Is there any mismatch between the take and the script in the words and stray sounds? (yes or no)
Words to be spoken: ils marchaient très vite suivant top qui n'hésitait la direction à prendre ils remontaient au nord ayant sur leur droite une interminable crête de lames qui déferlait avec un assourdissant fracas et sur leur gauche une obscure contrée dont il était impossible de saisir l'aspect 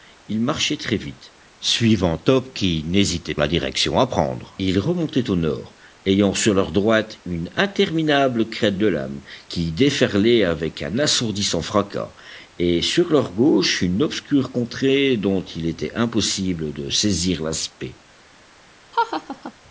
yes